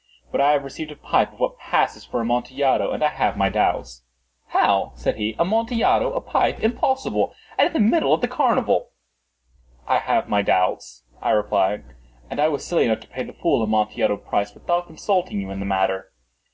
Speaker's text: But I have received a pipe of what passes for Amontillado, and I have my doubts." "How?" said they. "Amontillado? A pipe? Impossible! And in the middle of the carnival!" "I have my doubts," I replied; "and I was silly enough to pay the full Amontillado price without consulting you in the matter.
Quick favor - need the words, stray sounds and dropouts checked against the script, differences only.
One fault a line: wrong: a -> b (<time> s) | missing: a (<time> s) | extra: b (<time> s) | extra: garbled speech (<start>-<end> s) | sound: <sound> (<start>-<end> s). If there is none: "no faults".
wrong: they -> he (5.2 s)